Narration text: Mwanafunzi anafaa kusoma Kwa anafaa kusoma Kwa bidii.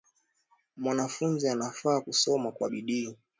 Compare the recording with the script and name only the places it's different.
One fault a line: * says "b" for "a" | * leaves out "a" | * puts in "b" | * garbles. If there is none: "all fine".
* leaves out "anafaa kusoma Kwa"